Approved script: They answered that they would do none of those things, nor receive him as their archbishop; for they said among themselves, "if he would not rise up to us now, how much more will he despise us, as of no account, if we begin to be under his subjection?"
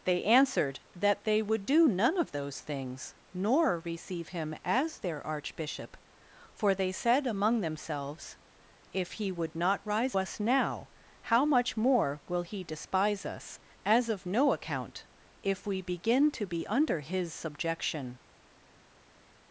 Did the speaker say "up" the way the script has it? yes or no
no